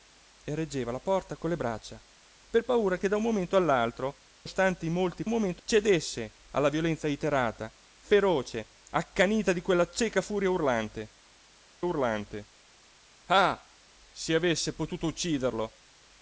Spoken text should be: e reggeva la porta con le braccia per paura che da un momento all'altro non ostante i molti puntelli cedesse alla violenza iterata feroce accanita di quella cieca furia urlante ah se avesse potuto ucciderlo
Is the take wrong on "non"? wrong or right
wrong